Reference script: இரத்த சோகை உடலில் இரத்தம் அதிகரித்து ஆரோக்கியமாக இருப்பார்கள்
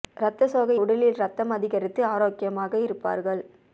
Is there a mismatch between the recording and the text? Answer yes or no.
no